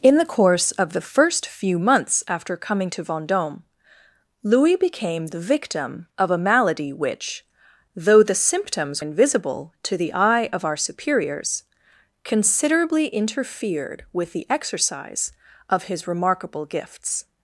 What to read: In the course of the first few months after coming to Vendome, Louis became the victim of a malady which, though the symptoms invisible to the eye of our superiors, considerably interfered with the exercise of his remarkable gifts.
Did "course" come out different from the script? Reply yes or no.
no